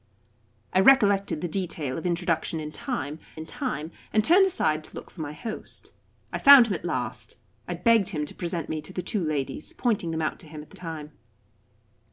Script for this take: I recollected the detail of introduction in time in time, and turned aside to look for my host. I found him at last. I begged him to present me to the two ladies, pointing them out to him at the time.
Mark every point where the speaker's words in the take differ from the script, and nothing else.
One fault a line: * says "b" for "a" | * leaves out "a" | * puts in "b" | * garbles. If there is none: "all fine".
all fine